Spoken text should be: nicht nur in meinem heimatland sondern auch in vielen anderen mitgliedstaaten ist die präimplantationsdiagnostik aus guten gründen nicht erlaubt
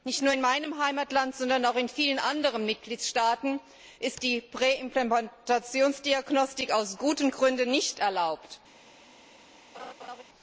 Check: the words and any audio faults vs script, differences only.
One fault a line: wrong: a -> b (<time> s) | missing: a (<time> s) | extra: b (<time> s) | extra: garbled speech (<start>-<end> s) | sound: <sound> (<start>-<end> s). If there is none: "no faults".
sound: laugh (9.7-10.2 s)